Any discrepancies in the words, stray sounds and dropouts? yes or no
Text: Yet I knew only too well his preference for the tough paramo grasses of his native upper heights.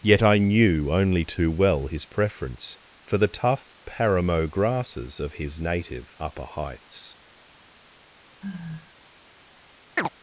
yes